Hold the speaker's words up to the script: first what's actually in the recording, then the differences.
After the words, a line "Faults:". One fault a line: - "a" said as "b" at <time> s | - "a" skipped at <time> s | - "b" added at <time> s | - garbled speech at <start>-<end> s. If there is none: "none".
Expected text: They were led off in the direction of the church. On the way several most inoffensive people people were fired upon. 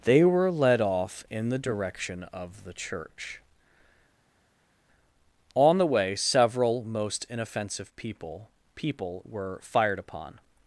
They were led off in the direction of the church. On the way several most inoffensive people people were fired upon.
Faults:
none